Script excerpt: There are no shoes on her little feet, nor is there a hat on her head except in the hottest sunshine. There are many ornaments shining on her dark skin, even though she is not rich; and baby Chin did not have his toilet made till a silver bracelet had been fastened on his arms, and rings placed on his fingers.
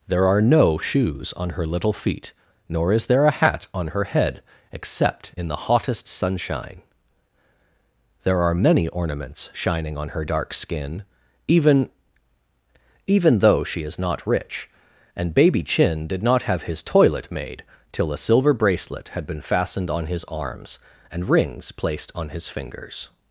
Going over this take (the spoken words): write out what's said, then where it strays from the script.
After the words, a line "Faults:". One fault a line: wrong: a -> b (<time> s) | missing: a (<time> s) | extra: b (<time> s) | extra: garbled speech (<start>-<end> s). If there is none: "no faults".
There are no shoes on her little feet, nor is there a hat on her head except in the hottest sunshine. There are many ornaments shining on her dark skin, even even though she is not rich; and baby Chin did not have his toilet made till a silver bracelet had been fastened on his arms, and rings placed on his fingers.
Faults:
extra: even (13.1 s)